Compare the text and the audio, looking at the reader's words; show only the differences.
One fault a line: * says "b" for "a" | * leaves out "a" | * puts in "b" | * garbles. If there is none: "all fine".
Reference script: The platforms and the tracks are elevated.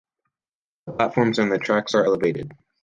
all fine